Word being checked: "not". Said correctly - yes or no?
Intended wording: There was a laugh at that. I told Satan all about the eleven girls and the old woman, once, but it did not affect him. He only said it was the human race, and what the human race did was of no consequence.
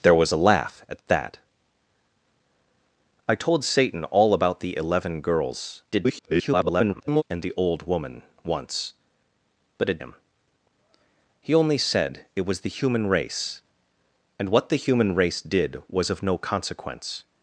no